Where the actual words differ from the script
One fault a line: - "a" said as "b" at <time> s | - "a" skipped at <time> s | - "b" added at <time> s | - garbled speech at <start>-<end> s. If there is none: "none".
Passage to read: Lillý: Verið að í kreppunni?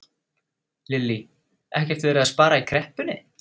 - "Ekkert" added at 1.8 s
- "spara" added at 2.3 s